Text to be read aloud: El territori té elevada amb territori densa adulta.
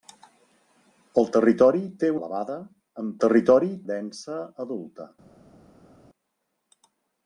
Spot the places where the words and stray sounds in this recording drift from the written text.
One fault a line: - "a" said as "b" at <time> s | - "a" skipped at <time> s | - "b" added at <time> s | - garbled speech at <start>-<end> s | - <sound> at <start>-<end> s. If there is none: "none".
none